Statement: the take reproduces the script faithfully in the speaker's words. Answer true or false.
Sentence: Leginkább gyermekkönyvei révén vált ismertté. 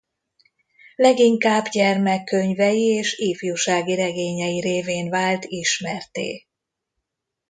false